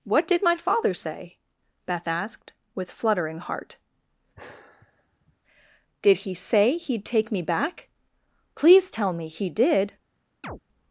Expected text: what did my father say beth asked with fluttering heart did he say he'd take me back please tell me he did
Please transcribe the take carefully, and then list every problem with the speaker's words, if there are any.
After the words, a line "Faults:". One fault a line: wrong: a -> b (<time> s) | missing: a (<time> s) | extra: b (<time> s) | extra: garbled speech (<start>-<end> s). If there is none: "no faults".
what did my father say beth asked with fluttering heart did he say he'd take me back please tell me he did
Faults:
no faults